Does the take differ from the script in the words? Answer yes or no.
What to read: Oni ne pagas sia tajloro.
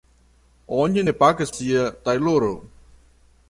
no